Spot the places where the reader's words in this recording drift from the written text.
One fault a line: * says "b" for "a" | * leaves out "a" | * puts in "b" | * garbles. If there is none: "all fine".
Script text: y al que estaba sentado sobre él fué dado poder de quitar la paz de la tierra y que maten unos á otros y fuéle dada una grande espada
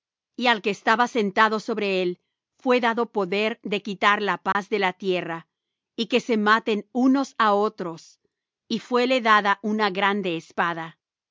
* puts in "se"